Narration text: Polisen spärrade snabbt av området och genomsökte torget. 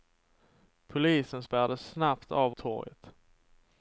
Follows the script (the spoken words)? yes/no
no